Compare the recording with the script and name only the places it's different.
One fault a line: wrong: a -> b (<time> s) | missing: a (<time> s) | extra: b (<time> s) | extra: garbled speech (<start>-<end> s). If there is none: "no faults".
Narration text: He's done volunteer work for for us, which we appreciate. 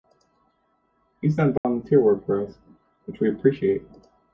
missing: for (2.4 s)